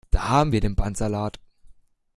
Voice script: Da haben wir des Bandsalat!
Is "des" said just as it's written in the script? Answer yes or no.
no